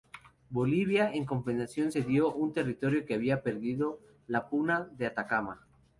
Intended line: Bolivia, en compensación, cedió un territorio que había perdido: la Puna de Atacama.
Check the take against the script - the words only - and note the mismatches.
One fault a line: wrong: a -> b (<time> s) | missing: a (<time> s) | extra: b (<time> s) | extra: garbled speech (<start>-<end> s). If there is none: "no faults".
no faults